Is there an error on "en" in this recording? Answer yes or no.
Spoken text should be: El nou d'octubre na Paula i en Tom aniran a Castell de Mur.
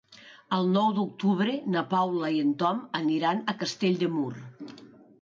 no